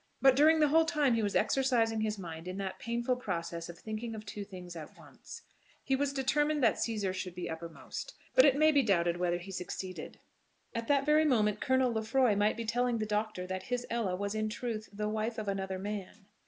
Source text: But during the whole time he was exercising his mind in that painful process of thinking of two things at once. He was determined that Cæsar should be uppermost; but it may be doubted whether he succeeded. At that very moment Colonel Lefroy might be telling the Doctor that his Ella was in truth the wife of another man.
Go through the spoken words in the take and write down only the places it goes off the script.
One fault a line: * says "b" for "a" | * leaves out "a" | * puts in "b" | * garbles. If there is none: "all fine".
all fine